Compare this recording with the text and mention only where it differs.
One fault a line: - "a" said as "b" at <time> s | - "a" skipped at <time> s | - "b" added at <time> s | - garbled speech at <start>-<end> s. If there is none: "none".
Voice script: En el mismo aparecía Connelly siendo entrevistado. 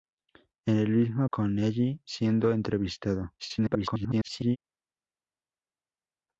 - "aparecía" skipped at 1.2 s
- garbled speech at 3.4-4.6 s